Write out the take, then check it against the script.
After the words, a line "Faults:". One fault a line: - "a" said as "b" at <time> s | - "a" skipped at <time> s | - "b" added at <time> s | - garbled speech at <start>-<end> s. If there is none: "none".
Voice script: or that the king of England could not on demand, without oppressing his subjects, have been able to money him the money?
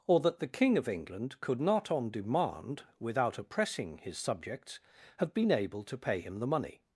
or that the king of England could not on demand, without oppressing his subjects, have been able to pay him the money?
Faults:
- "money" said as "pay" at 6.0 s